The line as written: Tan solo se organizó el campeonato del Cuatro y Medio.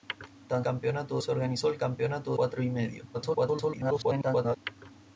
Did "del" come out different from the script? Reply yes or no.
yes